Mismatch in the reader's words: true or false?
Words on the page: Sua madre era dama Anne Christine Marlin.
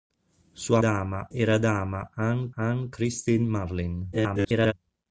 true